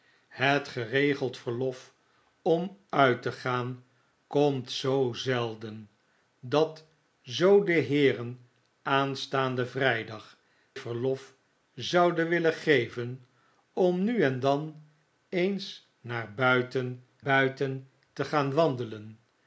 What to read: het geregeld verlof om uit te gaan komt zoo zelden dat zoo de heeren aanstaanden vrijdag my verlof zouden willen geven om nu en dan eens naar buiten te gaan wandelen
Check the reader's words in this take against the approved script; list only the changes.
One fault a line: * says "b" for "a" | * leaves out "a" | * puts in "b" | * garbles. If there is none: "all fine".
* leaves out "my"
* puts in "buiten"